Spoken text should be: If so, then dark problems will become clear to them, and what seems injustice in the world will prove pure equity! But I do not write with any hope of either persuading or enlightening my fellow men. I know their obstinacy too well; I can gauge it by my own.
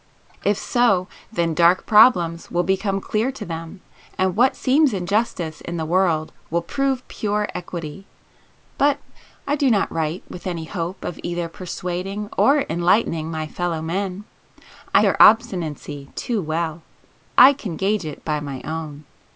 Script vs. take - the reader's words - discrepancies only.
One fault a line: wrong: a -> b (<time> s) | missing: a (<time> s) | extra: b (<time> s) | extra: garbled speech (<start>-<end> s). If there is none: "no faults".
missing: know (15.1 s)